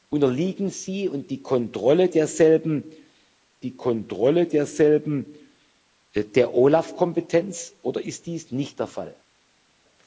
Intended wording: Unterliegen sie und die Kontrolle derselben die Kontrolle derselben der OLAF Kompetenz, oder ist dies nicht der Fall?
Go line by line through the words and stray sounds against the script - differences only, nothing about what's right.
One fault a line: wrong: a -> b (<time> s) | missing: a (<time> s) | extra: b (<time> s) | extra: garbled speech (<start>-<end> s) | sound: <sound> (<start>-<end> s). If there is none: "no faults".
no faults